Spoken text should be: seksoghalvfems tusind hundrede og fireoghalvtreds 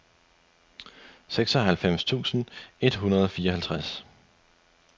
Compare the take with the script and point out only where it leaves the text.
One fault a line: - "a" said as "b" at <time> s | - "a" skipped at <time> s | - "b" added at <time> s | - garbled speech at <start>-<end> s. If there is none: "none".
- "et" added at 2.8 s